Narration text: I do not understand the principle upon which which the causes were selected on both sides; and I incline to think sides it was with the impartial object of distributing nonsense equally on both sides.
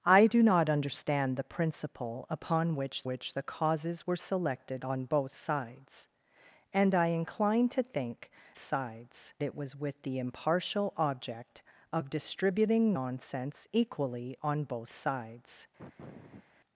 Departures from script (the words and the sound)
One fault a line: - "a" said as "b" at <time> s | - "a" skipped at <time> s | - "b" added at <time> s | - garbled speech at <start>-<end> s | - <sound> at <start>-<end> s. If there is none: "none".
- sniff at 15.8-16.5 s